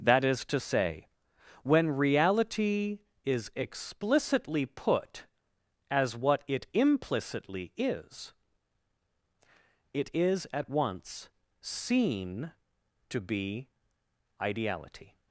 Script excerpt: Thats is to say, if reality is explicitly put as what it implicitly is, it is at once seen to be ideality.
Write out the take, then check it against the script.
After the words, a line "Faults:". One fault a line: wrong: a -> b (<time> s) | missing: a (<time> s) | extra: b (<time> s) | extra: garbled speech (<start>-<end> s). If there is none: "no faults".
That is to say, when reality is explicitly put as what it implicitly is, it is at once seen to be ideality.
Faults:
wrong: Thats -> That (0.0 s)
wrong: if -> when (1.6 s)